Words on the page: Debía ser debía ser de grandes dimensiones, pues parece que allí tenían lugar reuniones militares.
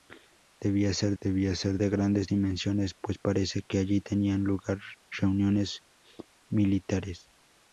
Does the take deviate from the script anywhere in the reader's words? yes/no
no